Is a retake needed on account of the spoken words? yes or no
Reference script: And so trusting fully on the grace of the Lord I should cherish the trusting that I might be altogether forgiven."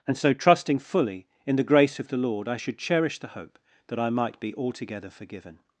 yes